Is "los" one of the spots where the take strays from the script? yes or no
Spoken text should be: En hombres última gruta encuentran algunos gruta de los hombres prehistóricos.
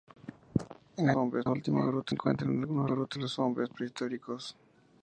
no